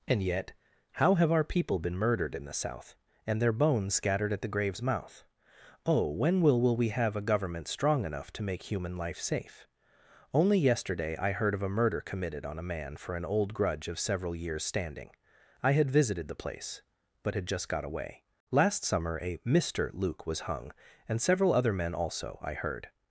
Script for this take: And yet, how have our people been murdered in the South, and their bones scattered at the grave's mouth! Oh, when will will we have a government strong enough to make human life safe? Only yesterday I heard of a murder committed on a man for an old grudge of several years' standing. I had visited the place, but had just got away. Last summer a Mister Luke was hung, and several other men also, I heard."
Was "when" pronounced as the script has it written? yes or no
yes